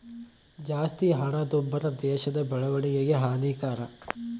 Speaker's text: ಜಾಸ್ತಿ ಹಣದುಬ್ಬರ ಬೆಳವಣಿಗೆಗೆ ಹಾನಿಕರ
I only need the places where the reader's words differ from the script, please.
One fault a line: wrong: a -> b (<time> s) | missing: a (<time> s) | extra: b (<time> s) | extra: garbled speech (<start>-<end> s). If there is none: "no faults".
extra: ದೇಶದ (2.0 s)